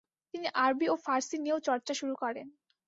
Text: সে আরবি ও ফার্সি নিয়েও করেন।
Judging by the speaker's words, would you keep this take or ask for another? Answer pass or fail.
fail